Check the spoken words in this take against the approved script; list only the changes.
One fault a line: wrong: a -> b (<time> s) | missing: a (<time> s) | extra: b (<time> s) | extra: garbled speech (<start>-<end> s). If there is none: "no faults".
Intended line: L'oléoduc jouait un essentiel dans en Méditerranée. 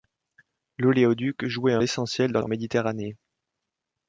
no faults